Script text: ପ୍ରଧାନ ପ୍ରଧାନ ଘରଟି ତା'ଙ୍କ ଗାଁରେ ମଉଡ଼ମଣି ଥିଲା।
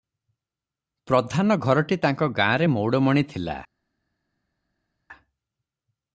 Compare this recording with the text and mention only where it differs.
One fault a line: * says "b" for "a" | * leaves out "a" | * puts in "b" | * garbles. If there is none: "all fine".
* leaves out "ପ୍ରଧାନ"